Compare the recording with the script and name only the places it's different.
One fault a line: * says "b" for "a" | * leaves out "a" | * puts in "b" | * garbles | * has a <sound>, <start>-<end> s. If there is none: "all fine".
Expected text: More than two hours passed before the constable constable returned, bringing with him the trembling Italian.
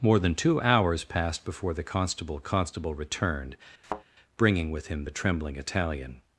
* has a thud, 3.8-4.0 s